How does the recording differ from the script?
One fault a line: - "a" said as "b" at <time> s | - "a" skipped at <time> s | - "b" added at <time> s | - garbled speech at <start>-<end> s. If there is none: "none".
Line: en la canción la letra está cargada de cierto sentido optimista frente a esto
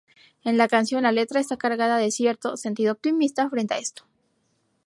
none